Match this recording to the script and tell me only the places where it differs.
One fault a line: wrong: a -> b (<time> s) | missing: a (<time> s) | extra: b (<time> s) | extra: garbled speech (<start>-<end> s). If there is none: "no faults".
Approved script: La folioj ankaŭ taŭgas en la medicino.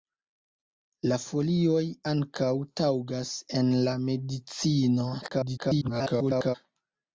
extra: garbled speech (5.2-6.6 s)